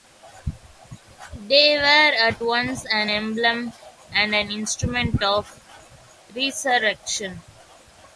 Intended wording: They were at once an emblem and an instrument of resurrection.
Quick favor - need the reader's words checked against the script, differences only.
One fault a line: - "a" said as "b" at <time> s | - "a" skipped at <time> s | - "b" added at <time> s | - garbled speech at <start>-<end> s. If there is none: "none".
none